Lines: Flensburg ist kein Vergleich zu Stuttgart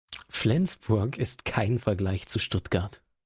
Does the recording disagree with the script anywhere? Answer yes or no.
no